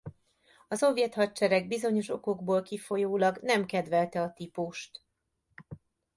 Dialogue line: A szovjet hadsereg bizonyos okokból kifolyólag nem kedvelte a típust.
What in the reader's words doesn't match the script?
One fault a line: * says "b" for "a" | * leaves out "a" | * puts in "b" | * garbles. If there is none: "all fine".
all fine